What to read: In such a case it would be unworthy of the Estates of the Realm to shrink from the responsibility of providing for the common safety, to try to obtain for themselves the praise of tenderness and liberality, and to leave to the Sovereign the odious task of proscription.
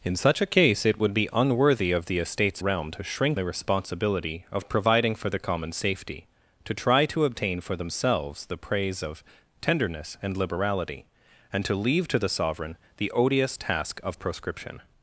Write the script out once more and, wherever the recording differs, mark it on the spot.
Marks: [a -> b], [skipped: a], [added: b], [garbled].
In such a case it would be unworthy of the Estates [skipped: of the] Realm to shrink [skipped: from] the responsibility of providing for the common safety, to try to obtain for themselves the praise of tenderness and liberality, and to leave to the Sovereign the odious task of proscription.